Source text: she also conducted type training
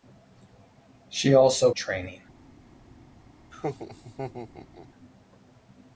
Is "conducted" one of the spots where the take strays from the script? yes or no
yes